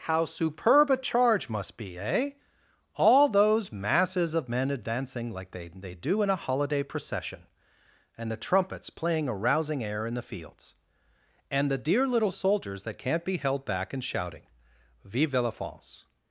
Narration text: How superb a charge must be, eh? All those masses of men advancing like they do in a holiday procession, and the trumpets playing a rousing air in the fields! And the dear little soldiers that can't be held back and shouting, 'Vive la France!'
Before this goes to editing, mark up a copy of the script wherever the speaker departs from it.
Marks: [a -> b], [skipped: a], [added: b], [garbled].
How superb a charge must be, eh? All those masses of men advancing like they [added: they] do in a holiday procession, and the trumpets playing a rousing air in the fields! And the dear little soldiers that can't be held back and shouting, 'Vive la France!'